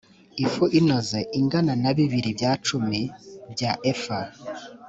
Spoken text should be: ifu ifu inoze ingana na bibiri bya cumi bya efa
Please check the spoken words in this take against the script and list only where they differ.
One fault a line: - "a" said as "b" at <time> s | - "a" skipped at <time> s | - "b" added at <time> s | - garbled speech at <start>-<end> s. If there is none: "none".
- "ifu" skipped at 0.6 s